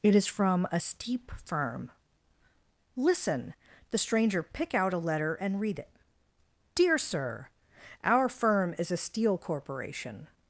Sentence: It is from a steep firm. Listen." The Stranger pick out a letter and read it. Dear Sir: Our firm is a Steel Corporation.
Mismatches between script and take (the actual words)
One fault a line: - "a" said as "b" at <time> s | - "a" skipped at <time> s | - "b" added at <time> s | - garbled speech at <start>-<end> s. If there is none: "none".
none